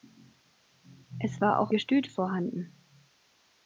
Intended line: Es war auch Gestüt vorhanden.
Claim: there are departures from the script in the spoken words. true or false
false